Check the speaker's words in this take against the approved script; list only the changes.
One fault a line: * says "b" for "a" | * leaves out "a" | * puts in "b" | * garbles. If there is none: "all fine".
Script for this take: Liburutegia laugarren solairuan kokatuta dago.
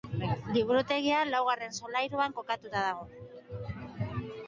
all fine